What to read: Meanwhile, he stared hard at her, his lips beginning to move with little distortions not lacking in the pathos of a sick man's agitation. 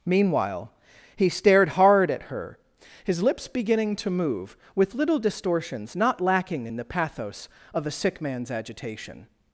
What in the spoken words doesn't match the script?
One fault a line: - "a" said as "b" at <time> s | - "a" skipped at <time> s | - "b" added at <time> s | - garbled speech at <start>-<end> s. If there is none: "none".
none